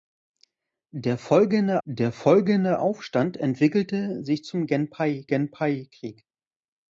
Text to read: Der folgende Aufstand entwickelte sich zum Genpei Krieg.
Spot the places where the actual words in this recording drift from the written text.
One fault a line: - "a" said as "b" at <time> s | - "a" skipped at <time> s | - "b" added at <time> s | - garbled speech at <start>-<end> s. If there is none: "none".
- "der folgende" added at 1.9 s
- "Genpei" added at 5.3 s